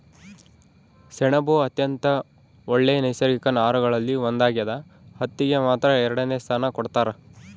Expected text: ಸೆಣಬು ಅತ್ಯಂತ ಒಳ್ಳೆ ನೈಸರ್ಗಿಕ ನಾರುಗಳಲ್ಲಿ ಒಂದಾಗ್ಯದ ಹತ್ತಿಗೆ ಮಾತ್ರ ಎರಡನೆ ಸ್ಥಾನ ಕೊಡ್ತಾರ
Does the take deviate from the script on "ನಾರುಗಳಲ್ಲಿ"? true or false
false